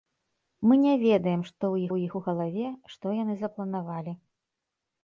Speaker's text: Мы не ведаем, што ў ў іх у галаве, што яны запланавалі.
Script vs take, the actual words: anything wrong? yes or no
no